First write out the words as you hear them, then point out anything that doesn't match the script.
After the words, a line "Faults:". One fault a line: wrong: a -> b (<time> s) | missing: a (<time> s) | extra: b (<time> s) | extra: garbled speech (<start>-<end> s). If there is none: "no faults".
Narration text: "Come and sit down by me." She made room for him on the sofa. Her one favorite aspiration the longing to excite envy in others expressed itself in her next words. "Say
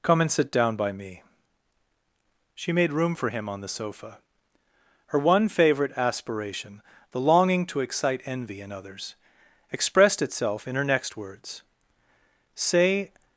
"Come and sit down by me." She made room for him on the sofa. Her one favorite aspiration the longing to excite envy in others expressed itself in her next words. "Say
Faults:
no faults